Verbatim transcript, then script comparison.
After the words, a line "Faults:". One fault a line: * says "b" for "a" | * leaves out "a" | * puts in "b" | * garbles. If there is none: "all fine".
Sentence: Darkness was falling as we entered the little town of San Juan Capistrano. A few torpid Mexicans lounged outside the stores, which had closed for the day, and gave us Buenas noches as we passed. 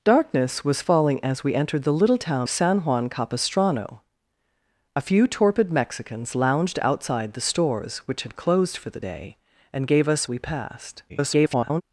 Darkness was falling as we entered the little town San Juan Capistrano. A few torpid Mexicans lounged outside the stores, which had closed for the day, and gave us We passed. [garbled]
Faults:
* leaves out "of"
* leaves out "Buenas noches as"
* garbles